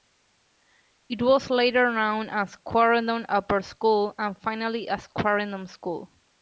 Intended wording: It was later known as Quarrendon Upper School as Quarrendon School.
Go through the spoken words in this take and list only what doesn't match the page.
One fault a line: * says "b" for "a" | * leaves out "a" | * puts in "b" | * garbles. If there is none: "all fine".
* puts in "and finally"